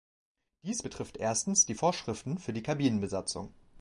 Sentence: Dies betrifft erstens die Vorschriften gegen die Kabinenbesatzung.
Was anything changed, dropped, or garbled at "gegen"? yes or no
yes